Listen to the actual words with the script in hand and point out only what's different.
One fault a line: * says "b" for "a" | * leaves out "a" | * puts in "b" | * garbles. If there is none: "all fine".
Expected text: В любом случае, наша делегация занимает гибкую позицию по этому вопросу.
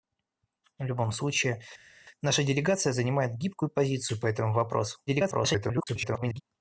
* garbles